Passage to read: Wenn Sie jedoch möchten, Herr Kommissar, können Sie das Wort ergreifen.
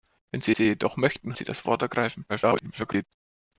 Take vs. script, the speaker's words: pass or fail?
fail